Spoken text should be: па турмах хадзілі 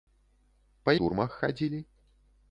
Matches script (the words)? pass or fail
pass